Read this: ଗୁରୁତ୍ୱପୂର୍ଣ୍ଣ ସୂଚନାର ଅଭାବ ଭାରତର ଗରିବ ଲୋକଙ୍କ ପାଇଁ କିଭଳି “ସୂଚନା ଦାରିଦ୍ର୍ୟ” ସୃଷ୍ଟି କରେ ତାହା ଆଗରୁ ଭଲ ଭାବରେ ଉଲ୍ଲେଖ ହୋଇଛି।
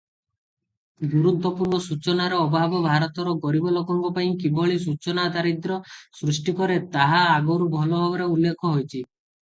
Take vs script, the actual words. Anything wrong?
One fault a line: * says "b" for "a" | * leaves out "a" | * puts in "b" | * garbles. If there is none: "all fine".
all fine